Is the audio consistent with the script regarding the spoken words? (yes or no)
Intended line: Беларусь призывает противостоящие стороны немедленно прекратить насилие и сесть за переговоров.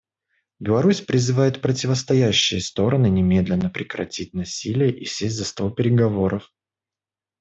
no